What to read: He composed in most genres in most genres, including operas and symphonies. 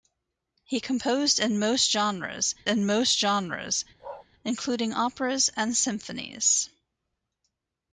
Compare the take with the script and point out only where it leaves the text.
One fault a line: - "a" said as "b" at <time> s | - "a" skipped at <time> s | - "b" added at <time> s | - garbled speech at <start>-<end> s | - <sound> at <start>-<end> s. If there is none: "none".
- bark at 4.0-4.3 s